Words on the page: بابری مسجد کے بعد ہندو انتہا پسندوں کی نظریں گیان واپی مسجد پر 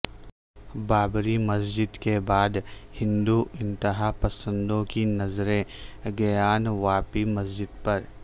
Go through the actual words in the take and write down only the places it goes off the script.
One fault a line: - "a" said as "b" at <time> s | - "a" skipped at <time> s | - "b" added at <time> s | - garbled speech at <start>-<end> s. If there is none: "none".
none